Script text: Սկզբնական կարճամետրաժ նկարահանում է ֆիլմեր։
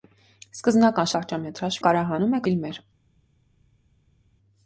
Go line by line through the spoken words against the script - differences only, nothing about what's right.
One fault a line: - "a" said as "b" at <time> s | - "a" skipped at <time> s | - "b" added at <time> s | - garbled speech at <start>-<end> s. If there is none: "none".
none